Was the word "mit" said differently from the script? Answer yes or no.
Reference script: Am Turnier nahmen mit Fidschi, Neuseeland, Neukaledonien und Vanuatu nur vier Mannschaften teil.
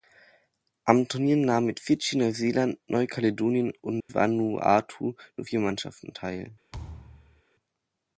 no